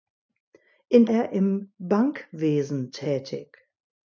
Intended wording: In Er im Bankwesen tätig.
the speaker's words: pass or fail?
pass